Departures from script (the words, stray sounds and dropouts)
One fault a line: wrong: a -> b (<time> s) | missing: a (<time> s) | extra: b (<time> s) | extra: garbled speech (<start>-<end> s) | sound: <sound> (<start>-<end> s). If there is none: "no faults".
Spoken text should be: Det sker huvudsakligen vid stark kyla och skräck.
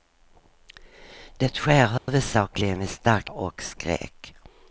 sound: dropout (2.0-2.1 s)
missing: kyla (3.3 s)